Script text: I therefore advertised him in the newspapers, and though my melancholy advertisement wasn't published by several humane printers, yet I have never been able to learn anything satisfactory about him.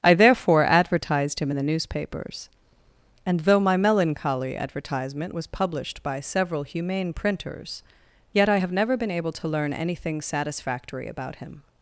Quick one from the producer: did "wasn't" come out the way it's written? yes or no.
no